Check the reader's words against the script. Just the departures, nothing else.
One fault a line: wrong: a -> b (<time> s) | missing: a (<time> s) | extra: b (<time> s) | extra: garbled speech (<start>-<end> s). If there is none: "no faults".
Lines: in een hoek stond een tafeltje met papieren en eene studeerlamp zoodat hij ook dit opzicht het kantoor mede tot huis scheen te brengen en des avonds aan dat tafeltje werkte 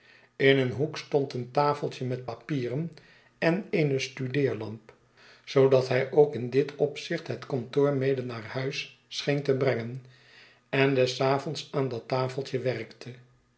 extra: in (6.3 s)
wrong: tot -> naar (8.2 s)